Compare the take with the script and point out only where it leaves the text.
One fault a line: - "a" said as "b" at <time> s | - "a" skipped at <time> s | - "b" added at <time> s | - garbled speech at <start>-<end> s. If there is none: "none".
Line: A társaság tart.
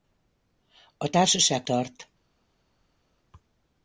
none